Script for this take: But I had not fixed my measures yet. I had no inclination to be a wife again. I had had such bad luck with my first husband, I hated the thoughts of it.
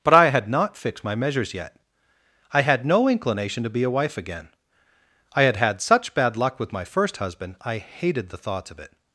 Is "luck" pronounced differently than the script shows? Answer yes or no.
no